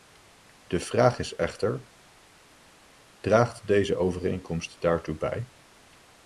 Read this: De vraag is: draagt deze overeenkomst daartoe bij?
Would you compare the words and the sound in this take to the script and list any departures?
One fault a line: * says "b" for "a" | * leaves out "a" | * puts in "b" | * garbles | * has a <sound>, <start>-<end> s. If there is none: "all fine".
* puts in "echter"